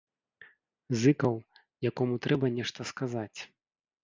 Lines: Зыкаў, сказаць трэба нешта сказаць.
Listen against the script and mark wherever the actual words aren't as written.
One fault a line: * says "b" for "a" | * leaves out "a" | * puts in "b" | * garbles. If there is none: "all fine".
* says "якому" for "сказаць"